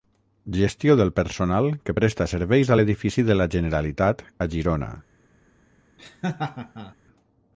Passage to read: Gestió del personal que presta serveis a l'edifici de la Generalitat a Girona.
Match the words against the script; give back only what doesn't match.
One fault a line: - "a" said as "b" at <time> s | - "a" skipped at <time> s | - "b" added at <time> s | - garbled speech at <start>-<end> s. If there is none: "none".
none